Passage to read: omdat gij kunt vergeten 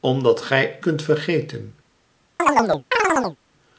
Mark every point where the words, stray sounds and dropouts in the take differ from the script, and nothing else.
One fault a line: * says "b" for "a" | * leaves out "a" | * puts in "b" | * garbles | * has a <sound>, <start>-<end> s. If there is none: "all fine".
* has a chirp, 2.4-3.4 s